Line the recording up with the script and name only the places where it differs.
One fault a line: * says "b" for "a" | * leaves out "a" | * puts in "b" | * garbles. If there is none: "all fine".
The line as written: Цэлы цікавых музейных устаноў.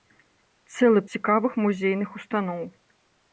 all fine